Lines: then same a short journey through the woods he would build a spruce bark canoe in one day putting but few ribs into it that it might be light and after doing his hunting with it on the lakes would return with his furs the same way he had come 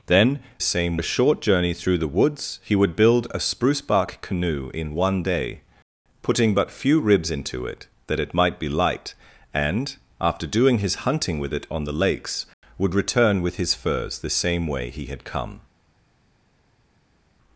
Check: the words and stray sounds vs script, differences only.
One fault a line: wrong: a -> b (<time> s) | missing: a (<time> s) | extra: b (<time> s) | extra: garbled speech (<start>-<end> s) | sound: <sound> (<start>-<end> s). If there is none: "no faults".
no faults